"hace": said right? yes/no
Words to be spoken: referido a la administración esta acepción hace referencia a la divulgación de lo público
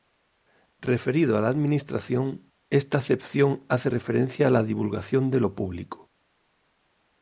yes